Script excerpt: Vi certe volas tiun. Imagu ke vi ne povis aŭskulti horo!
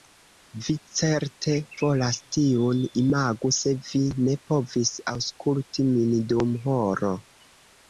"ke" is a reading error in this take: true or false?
true